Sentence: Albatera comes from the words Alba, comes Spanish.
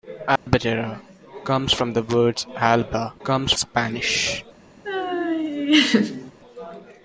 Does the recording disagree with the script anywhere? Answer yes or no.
no